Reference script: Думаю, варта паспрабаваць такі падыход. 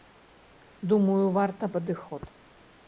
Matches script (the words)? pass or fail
fail